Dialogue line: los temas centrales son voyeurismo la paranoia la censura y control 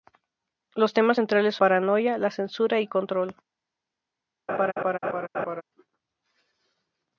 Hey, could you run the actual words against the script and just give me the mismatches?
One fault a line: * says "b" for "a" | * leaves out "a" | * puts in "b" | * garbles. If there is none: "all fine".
* leaves out "son voyeurismo la"